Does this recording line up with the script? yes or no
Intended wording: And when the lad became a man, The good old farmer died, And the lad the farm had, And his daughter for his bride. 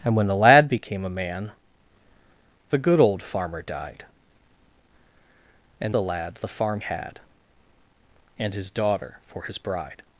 yes